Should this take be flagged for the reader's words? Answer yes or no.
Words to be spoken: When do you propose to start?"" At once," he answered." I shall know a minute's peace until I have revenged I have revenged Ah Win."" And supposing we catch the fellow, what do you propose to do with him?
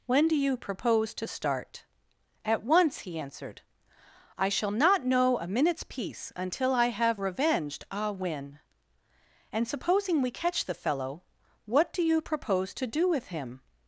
yes